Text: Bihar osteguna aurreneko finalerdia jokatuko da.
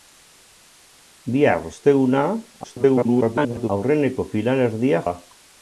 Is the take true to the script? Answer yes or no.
no